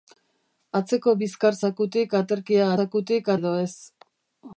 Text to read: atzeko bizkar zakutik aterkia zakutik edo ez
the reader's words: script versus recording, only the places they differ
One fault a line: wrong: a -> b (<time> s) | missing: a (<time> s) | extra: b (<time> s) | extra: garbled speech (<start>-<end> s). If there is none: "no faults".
no faults